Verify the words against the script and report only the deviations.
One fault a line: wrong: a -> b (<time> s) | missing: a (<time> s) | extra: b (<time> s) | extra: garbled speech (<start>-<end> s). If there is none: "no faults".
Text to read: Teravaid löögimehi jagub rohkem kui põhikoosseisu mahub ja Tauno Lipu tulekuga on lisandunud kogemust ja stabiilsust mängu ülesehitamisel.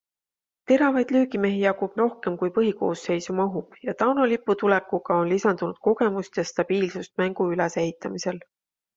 no faults